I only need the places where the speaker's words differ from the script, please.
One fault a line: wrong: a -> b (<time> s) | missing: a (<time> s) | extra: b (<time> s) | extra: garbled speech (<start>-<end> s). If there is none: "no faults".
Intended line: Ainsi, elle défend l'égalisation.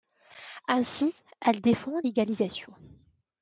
no faults